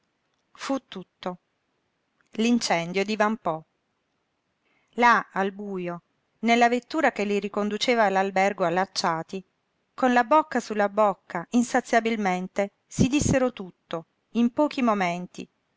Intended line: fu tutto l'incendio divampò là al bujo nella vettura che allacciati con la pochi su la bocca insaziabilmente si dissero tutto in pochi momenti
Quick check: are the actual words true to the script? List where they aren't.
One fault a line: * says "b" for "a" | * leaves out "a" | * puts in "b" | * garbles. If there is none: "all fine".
* puts in "li riconduceva all'albergo"
* says "bocca" for "pochi"